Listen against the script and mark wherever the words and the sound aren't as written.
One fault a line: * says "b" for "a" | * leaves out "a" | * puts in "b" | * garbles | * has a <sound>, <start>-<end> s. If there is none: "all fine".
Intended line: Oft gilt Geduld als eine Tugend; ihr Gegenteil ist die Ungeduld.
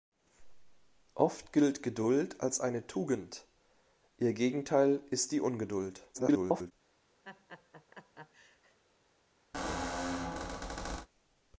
* garbles
* has a laugh, 7.2-8.8 s
* has a squeak, 9.5-11.1 s